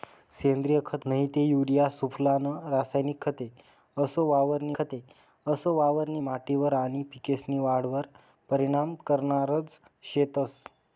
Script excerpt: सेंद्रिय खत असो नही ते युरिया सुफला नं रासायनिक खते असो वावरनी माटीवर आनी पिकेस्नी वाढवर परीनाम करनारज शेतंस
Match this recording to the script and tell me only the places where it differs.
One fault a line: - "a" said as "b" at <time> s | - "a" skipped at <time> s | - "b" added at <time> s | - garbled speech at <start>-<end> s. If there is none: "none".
- "असो" skipped at 1.1 s
- "खते असो वावरनी" added at 4.8 s